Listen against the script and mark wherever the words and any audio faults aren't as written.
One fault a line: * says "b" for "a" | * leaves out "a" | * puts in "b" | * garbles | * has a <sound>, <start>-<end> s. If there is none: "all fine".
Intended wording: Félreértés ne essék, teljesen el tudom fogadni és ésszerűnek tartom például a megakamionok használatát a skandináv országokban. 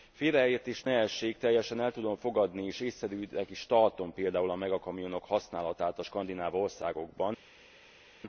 * puts in "is"